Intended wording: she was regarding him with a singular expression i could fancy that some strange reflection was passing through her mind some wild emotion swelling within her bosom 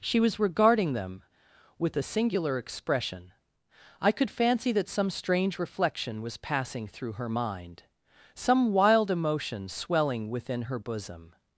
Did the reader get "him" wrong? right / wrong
wrong